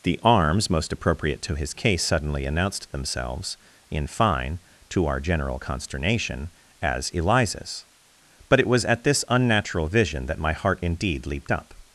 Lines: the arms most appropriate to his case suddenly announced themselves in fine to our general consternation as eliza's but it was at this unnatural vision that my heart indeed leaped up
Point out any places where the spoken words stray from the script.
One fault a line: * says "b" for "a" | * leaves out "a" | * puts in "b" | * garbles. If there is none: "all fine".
all fine